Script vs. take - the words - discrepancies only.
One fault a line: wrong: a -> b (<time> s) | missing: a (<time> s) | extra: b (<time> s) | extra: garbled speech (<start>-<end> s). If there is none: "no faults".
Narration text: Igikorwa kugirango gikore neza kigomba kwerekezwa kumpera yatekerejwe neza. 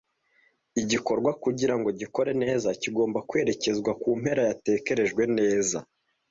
no faults